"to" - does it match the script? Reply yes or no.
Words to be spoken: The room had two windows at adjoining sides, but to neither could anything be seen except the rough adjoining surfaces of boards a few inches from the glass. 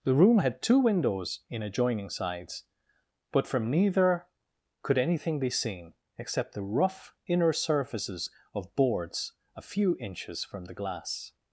no